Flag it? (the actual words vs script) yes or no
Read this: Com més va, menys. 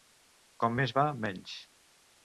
no